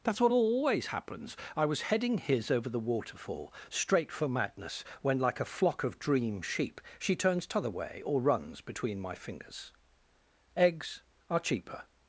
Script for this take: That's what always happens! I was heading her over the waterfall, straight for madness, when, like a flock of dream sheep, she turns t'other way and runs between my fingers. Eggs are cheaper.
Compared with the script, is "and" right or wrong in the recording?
wrong